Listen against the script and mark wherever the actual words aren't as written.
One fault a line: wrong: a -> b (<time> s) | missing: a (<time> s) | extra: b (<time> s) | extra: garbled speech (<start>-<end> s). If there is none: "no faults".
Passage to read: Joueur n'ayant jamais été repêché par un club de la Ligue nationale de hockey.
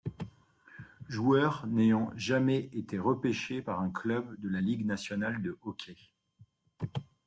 no faults